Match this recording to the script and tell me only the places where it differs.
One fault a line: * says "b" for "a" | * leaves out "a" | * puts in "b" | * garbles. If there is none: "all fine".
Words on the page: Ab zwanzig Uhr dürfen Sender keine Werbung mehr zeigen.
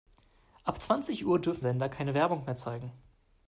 all fine